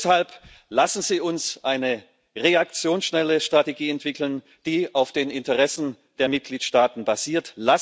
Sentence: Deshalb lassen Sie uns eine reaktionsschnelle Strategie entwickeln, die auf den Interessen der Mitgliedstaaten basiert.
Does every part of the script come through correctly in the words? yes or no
yes